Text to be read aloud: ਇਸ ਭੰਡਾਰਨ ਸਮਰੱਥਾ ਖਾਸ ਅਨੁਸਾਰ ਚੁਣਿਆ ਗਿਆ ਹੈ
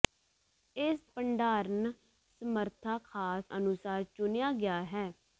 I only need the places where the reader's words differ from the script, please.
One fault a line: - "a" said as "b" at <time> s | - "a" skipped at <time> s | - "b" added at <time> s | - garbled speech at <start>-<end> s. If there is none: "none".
none